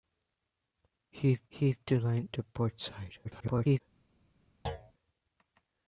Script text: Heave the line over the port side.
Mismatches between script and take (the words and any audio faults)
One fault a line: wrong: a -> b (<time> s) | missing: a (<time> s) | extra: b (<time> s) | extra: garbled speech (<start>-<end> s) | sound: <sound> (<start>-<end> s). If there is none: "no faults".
extra: heave (1.5 s)
missing: over (2.3 s)
extra: garbled speech (3.2-3.8 s)
sound: thud (4.6-4.9 s)